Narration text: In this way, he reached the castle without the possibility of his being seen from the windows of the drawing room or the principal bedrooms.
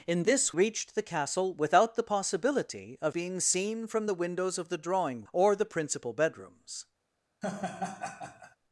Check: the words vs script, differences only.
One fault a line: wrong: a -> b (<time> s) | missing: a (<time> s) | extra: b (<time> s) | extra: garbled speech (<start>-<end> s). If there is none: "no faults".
missing: way he (0.6 s)
missing: his (3.1 s)
missing: room (5.3 s)